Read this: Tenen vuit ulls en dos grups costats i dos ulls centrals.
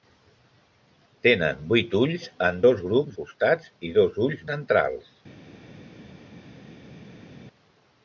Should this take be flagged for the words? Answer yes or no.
no